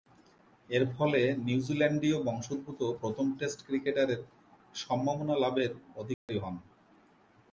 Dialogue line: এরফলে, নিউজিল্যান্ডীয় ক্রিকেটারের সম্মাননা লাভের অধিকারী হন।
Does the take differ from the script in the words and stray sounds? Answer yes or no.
yes